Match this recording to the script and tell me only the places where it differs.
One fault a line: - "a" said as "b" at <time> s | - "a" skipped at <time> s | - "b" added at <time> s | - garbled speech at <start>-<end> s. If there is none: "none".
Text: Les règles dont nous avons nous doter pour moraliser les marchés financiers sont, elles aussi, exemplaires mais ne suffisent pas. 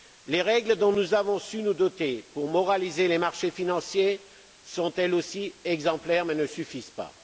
- "su" added at 1.4 s